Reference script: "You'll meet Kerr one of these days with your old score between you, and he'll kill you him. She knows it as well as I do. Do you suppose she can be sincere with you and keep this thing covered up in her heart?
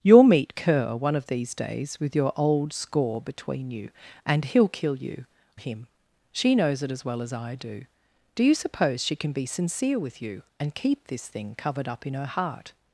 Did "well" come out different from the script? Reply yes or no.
no